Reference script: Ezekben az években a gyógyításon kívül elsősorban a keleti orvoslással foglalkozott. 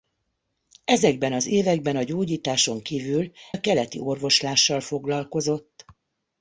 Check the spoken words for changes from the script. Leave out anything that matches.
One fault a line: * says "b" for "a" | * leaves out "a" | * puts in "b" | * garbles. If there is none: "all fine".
* leaves out "elsősorban"